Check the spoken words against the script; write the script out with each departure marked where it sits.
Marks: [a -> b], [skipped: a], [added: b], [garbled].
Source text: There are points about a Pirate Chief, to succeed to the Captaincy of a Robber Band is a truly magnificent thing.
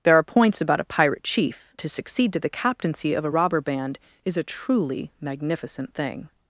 There are points about a Pirate Chief, to succeed to the Captaincy of a Robber Band is a truly magnificent thing.